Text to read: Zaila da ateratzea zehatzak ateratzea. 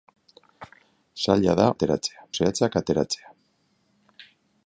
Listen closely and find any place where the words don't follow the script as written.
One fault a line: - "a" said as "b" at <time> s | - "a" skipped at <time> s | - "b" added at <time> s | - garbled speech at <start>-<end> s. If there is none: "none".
none